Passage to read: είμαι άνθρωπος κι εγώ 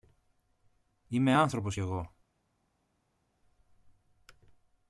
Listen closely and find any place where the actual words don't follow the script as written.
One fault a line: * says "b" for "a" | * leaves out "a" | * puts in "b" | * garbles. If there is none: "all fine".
all fine